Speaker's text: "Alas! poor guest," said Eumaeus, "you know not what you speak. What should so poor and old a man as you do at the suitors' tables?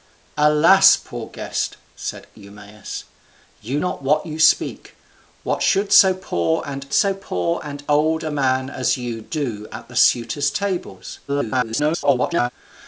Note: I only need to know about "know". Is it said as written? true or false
false